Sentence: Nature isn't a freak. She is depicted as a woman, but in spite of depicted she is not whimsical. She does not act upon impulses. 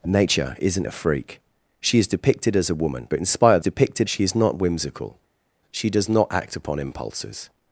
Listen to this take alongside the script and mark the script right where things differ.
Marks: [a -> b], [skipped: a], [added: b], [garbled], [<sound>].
Nature isn't a freak. She is depicted as a woman, but in spite of depicted she is not whimsical. She does not act upon impulses.